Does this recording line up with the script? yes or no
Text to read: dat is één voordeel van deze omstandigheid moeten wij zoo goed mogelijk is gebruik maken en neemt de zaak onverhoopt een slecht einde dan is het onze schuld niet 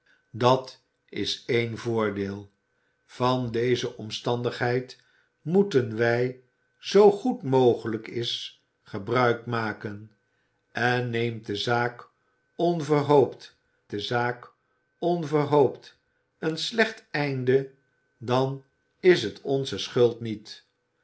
no